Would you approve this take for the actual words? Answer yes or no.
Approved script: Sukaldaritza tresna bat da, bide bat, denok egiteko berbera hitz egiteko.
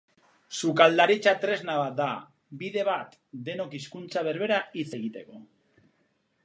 no